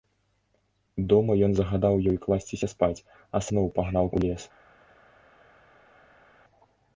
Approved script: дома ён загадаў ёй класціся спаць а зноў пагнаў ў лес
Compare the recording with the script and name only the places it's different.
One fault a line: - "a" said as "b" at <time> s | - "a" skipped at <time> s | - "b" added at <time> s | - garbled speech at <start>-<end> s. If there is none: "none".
none